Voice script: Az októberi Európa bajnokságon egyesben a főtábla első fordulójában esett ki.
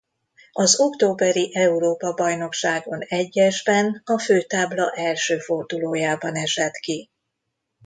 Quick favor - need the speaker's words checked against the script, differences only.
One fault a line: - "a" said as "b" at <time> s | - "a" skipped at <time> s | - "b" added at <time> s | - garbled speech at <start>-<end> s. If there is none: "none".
none